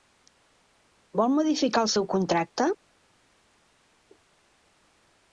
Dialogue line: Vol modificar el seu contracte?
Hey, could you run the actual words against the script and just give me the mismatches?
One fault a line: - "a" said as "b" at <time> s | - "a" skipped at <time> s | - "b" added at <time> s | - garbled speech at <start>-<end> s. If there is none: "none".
none